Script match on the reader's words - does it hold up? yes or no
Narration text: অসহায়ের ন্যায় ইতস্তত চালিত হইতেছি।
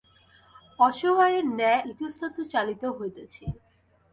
yes